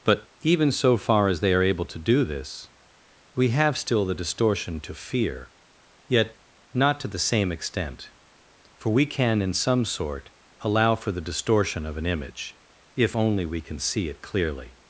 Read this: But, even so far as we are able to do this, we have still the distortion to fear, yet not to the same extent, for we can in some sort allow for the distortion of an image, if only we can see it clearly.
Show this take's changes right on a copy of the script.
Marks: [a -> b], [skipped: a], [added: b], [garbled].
But, even so far as [we -> they] are able to do this, we have still the distortion to fear, yet not to the same extent, for we can in some sort allow for the distortion of an image, if only we can see it clearly.